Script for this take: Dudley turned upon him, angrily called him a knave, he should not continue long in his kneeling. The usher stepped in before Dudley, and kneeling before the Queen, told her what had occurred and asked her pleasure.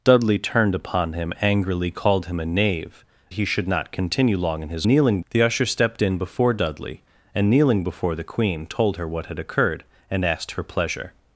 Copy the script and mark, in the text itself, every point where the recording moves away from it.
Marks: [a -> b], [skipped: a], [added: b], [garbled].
Dudley turned upon him, angrily called him a knave, he should not continue long in his kneeling. The usher stepped in before Dudley, and kneeling before the Queen, told her what had occurred and asked her pleasure.